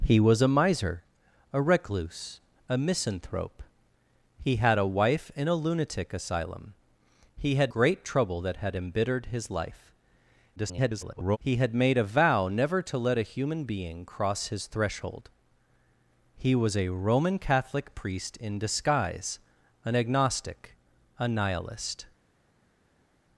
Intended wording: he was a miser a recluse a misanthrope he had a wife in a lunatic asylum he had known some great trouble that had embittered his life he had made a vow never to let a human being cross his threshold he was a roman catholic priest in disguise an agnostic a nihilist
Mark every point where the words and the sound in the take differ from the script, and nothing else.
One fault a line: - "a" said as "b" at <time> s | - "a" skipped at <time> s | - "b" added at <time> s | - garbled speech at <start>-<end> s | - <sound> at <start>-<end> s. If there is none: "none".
- "known some" skipped at 7.7 s
- garbled speech at 10.6-11.4 s